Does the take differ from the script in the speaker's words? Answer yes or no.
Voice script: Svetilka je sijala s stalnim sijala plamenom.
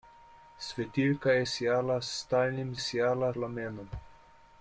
no